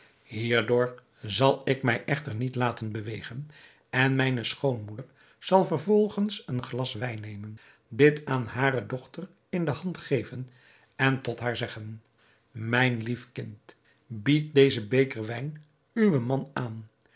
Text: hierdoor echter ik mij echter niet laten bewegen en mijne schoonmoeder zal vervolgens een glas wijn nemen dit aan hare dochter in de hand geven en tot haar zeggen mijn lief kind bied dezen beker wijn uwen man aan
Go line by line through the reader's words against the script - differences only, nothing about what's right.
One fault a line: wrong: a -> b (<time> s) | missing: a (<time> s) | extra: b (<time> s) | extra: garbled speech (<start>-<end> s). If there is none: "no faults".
wrong: echter -> zal (1.2 s)